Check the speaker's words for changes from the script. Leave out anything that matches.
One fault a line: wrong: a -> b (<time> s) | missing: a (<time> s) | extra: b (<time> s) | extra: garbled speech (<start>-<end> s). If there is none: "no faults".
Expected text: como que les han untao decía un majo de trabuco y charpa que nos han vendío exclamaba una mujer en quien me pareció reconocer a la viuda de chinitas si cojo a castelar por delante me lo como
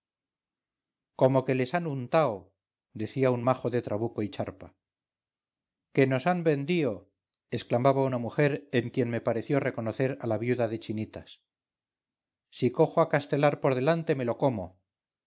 no faults